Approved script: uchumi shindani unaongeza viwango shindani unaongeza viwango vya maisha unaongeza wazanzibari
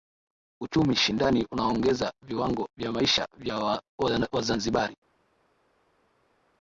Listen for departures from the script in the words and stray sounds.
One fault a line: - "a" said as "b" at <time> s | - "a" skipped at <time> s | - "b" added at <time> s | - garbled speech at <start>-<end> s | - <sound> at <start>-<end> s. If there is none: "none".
- "shindani unaongeza viwango" skipped at 2.7 s
- "unaongeza" said as "vya" at 3.4 s